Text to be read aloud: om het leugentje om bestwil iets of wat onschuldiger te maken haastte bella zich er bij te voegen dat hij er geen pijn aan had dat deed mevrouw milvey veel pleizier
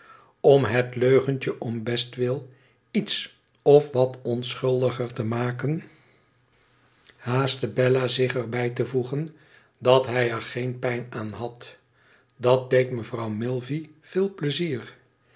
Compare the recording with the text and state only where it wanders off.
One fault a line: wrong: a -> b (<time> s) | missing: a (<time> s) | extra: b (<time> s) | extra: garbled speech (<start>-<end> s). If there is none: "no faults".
no faults